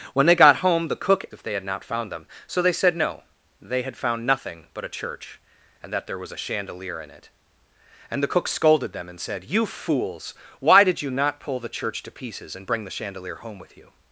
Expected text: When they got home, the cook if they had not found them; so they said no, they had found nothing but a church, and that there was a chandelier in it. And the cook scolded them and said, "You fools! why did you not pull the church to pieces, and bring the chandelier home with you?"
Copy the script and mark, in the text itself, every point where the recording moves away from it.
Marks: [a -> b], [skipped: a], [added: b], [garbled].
When they got home, the cook if they had not found them; so they said no, they had found nothing but a church, and that there was a chandelier in it. And the cook scolded them and said, "You fools! why did you not pull the church to pieces, and bring the chandelier home with you?"